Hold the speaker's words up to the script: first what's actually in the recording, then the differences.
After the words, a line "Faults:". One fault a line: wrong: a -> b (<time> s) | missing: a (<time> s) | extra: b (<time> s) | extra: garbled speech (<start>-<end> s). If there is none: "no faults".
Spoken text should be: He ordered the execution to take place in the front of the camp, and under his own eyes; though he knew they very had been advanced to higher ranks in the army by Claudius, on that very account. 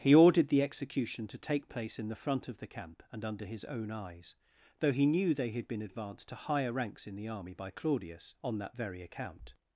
He ordered the execution to take place in the front of the camp, and under his own eyes; though he knew they had been advanced to higher ranks in the army by Claudius, on that very account.
Faults:
missing: very (5.5 s)